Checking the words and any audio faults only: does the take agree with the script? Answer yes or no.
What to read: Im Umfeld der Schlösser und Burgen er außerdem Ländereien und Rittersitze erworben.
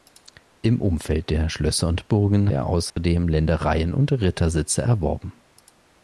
no